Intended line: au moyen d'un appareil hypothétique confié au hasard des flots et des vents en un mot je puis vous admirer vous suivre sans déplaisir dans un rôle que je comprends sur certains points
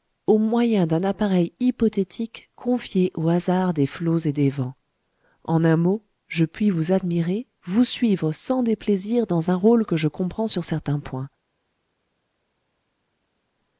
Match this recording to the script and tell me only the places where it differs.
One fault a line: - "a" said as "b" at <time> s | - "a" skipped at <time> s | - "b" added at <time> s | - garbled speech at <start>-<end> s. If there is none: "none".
none